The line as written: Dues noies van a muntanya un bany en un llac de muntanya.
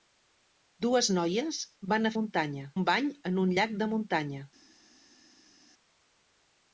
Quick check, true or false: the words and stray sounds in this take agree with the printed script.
true